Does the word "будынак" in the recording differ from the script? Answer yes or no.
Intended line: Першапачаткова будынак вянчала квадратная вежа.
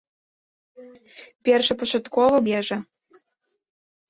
yes